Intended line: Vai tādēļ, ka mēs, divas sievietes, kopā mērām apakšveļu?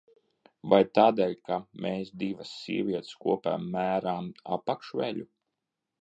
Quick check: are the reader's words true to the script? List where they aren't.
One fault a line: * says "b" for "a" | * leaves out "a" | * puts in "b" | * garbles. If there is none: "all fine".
all fine